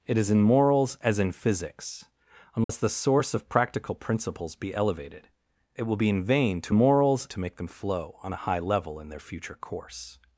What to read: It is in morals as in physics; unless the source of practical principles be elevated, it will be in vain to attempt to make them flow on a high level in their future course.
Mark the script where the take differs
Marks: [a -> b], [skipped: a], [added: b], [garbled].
It is in morals as in physics; unless the source of practical principles be elevated, it will be in vain to [attempt -> morals] to make them flow on a high level in their future course.